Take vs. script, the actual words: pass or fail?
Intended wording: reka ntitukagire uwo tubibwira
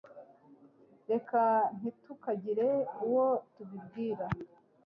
pass